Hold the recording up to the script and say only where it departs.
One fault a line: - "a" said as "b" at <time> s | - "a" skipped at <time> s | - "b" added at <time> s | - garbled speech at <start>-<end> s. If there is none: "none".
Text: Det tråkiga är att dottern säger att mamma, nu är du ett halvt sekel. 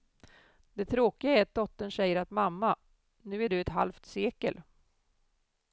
none